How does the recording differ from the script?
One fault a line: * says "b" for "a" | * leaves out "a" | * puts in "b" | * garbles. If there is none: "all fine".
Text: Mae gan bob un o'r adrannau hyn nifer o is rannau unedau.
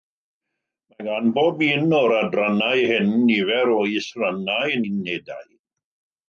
all fine